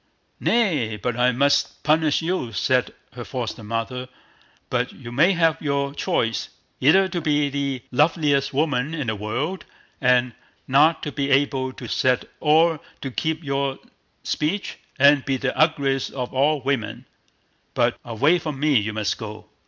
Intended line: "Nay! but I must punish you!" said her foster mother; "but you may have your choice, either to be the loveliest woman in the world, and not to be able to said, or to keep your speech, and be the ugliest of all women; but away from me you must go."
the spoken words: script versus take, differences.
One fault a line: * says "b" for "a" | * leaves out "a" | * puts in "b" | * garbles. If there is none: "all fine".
all fine